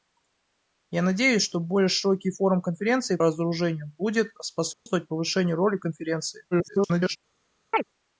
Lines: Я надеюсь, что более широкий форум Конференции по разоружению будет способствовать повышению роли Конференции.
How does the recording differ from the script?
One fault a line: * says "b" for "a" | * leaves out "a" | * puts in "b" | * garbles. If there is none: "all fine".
* leaves out "по"
* garbles